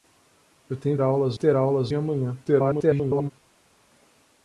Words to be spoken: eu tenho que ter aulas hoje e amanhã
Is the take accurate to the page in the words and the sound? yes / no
no